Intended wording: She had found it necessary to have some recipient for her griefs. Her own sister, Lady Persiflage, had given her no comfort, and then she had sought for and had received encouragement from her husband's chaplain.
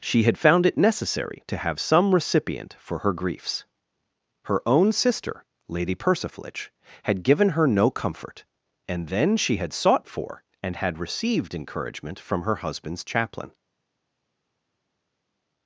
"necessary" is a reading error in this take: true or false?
false